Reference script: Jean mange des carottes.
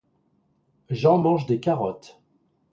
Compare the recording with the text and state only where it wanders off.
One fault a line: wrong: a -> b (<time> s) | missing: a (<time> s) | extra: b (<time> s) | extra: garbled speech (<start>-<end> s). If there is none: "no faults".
no faults